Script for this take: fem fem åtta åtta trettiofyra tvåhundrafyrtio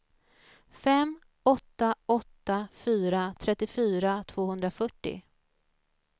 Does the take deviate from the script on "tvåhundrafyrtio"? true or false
false